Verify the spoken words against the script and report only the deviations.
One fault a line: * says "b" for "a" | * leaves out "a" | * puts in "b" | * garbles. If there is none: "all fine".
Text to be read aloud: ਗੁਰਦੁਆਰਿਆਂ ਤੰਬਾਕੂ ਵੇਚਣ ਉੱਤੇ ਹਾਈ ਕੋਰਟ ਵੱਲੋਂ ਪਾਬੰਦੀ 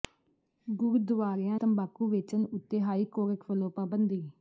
all fine